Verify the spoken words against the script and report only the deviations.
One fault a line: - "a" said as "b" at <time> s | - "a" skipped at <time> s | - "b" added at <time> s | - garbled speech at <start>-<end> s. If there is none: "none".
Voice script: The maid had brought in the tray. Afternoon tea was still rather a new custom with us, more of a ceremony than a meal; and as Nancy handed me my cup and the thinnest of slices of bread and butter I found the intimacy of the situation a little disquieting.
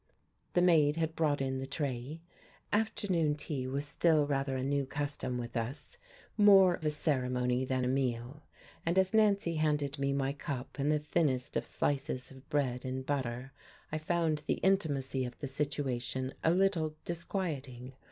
- "of" skipped at 6.8 s